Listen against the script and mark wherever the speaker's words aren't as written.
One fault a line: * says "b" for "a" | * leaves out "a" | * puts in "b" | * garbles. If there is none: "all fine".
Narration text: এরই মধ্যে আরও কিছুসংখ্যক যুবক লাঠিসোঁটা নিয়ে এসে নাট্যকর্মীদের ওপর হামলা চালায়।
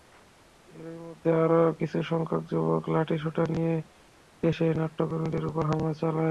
all fine